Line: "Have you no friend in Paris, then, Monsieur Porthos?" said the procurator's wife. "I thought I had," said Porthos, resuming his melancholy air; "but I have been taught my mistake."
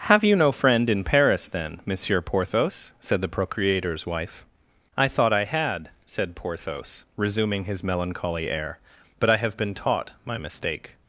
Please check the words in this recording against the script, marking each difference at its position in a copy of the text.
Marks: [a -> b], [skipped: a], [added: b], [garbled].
"Have you no friend in Paris, then, Monsieur Porthos?" said the procurator's wife. "I thought I had," said Porthos, resuming his melancholy air; "but I have been taught my mistake."